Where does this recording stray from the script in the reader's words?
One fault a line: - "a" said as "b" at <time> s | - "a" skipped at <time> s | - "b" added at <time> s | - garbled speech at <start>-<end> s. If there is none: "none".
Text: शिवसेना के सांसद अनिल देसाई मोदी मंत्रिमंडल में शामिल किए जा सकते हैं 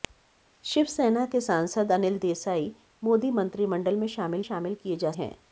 - "शामिल" added at 4.4 s
- "सकते" skipped at 5.1 s